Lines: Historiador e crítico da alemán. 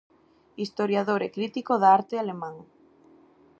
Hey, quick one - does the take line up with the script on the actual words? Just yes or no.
no